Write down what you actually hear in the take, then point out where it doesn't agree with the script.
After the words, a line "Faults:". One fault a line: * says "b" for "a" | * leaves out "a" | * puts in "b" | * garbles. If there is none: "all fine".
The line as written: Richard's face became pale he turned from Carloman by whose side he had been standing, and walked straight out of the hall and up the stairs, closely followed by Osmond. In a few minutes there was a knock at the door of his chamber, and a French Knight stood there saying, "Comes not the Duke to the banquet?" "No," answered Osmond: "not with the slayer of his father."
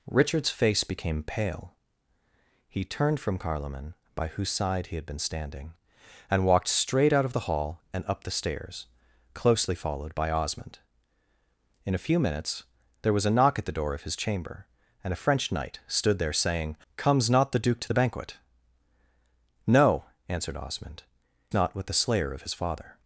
Richard's face became pale he turned from Carloman by whose side he had been standing, and walked straight out of the hall and up the stairs, closely followed by Osmond. In a few minutes there was a knock at the door of his chamber, and a French Knight stood there saying, "Comes not the Duke to the banquet?" "No," answered Osmond: "not with the slayer of his father."
Faults:
all fine